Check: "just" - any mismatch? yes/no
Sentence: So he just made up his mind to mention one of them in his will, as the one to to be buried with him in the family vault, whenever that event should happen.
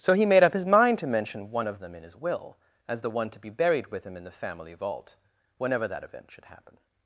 yes